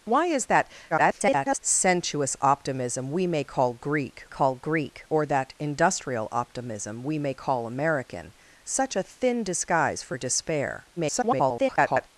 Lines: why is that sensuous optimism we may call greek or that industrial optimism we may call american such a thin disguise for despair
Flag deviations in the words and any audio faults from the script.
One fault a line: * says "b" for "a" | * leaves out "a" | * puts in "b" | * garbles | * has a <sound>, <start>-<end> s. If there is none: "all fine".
* garbles
* puts in "call greek"
* garbles